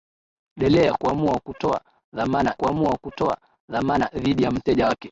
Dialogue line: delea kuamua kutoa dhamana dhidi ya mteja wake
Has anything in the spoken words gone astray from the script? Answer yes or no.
yes